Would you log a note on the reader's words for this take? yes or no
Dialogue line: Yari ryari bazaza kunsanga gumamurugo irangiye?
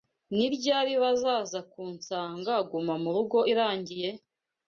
yes